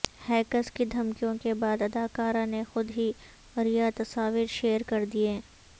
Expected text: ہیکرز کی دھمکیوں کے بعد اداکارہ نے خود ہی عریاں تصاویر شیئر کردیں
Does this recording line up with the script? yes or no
yes